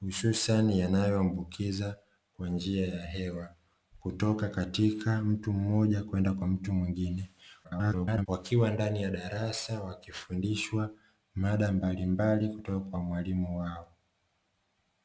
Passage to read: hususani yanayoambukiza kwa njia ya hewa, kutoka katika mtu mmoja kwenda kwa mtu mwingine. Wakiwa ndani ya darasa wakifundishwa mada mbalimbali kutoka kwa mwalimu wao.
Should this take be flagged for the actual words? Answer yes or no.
yes